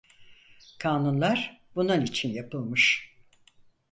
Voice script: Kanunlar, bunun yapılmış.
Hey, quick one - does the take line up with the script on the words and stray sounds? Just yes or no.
no